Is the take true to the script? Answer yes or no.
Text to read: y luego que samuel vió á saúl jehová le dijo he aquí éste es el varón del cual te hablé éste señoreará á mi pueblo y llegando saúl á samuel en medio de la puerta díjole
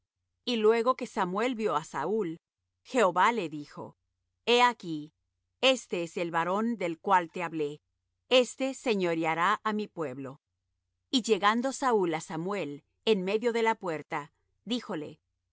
yes